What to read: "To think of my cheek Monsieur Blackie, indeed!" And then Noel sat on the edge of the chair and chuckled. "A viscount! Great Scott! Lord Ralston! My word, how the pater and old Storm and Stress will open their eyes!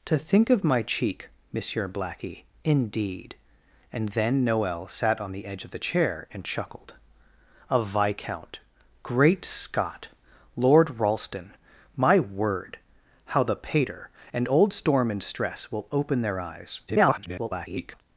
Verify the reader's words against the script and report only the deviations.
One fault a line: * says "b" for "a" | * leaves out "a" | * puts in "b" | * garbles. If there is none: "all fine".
* garbles